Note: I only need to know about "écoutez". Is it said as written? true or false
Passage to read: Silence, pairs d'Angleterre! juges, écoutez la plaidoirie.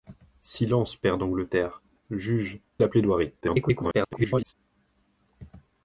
false